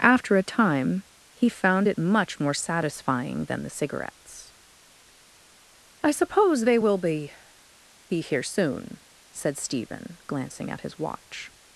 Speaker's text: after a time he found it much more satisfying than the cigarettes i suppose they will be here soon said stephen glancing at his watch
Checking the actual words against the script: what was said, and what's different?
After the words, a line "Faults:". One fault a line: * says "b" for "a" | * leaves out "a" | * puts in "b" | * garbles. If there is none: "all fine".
after a time he found it much more satisfying than the cigarettes i suppose they will be be here soon said stephen glancing at his watch
Faults:
* puts in "be"